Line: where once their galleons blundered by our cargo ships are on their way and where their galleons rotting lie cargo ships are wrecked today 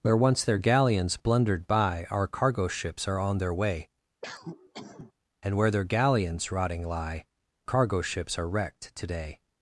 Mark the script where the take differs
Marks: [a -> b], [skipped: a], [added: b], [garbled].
where once their galleons blundered by our cargo ships are on their way and where their galleons rotting lie cargo ships are wrecked today